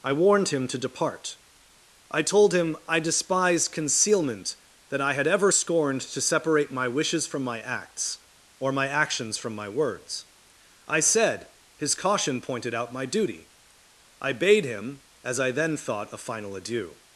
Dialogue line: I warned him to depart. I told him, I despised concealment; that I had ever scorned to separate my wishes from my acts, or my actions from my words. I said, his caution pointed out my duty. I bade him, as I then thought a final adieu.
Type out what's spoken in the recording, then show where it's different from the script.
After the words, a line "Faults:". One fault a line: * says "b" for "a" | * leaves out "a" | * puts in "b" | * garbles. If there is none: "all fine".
I warned him to depart. I told him, I despised concealment; that I had ever scorned to separate my wishes from my acts, or my actions from my words. I said, his caution pointed out my duty. I bade him, as I then thought a final adieu.
Faults:
all fine